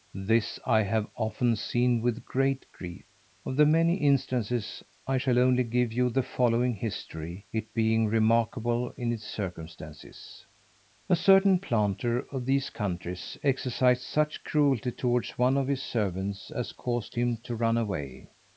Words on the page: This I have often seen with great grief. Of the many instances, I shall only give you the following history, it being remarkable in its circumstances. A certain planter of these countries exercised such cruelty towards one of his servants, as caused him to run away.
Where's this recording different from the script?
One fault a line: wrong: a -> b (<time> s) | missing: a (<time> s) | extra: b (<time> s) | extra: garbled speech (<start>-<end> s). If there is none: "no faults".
no faults